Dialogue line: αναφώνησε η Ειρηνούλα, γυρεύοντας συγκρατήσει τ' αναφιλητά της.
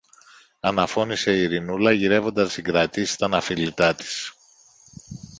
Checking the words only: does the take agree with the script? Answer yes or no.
yes